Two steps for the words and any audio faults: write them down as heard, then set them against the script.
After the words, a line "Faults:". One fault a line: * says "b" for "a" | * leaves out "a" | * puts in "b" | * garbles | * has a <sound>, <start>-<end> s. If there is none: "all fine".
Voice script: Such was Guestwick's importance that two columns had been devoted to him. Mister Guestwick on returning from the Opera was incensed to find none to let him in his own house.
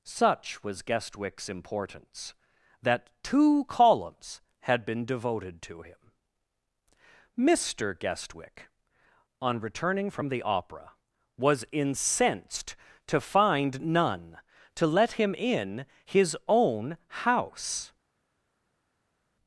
Such was Guestwick's importance that two columns had been devoted to him. Mister Guestwick on returning from the Opera was incensed to find none to let him in his own house.
Faults:
all fine